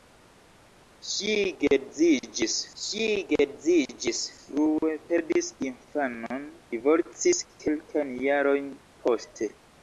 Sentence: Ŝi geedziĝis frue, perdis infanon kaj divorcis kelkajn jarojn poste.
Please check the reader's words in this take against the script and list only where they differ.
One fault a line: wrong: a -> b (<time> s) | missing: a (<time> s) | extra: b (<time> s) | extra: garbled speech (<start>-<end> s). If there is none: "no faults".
extra: ŝi geedziĝis (2.8 s)
missing: kaj (6.5 s)